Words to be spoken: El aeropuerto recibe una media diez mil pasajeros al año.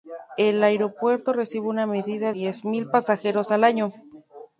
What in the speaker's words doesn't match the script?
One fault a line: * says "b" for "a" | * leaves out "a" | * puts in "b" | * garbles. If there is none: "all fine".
all fine